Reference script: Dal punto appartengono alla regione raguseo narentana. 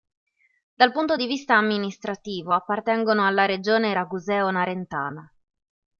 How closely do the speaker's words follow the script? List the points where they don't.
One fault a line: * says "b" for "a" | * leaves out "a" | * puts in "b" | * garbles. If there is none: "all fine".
* puts in "di vista amministrativo"